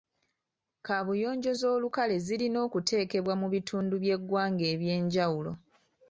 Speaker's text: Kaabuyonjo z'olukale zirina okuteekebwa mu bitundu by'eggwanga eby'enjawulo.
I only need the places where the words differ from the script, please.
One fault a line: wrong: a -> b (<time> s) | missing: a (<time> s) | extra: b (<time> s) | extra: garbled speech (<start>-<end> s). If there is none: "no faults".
no faults